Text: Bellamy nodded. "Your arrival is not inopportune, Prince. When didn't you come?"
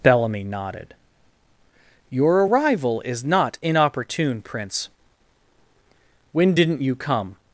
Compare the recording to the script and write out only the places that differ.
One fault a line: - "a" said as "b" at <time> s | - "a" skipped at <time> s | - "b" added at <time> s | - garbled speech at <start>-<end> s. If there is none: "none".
none